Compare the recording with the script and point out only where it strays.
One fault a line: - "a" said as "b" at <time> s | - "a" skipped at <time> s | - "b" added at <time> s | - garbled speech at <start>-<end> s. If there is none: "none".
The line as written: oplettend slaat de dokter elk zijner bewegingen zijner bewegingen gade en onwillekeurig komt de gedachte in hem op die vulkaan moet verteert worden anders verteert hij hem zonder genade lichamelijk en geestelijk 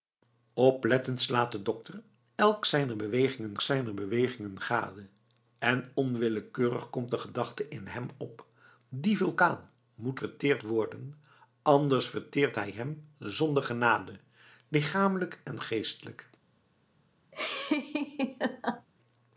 none